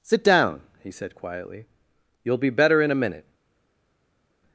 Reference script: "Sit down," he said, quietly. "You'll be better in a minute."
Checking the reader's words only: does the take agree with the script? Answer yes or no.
yes